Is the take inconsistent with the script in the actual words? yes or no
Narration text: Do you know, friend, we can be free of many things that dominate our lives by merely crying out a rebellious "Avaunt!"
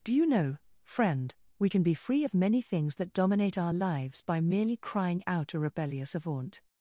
no